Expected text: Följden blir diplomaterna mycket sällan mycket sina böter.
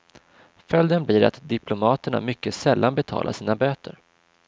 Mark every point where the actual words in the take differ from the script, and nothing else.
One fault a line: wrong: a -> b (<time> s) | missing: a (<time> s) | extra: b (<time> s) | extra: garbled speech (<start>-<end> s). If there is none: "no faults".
extra: att (1.2 s)
wrong: mycket -> betalar (3.0 s)